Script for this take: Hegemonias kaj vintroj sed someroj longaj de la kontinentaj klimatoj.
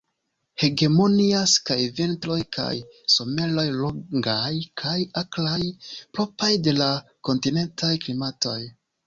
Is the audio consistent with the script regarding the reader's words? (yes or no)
no